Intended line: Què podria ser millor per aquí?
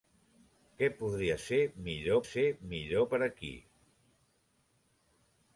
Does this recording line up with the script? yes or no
no